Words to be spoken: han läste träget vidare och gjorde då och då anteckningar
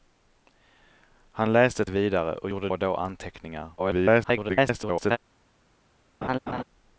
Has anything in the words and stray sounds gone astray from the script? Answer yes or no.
yes